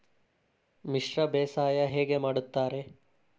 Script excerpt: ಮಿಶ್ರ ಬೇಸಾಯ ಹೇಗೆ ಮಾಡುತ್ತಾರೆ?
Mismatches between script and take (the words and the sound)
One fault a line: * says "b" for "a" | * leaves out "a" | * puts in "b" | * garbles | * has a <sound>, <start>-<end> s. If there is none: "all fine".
all fine